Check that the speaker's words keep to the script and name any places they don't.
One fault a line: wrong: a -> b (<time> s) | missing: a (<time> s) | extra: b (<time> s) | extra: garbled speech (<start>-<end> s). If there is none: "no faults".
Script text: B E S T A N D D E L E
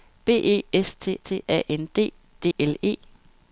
extra: T (1.2 s)
missing: E (2.5 s)